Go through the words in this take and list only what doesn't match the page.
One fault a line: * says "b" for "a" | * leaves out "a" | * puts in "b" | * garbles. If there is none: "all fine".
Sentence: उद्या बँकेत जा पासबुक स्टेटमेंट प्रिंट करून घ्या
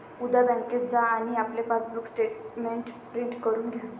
* puts in "आणि आपले"